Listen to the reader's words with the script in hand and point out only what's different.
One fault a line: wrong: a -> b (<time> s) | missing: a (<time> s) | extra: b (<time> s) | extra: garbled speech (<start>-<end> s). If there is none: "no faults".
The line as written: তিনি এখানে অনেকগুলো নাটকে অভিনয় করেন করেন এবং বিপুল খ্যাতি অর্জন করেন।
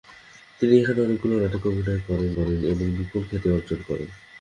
no faults